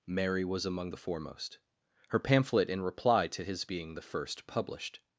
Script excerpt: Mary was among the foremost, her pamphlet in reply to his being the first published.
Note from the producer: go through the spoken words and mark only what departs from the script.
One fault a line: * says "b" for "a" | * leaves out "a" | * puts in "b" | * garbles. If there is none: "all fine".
all fine